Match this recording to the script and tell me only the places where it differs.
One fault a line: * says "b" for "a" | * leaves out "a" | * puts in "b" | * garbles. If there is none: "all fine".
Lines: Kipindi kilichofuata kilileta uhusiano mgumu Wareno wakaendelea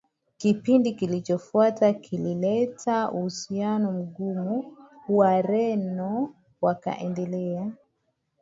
all fine